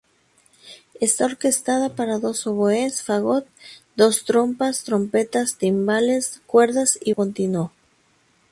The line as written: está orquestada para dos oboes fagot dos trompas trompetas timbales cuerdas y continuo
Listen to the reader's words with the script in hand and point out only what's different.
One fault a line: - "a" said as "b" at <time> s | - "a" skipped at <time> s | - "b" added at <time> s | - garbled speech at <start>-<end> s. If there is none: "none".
none